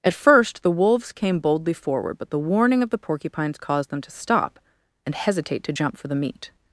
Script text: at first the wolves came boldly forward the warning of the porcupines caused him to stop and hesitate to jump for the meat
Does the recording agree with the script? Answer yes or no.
no